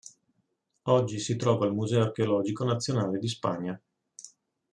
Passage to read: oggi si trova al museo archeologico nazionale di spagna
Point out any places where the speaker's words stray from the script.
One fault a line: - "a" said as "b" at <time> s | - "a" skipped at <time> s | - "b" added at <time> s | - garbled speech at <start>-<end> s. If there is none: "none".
none